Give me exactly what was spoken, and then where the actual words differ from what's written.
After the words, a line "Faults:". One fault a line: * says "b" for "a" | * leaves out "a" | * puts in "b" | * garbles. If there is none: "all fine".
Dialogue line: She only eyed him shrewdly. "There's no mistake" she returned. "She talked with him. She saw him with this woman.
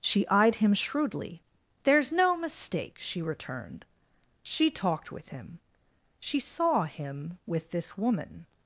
She eyed him shrewdly. "There's no mistake" she returned. "She talked with him. She saw him with this woman.
Faults:
* leaves out "only"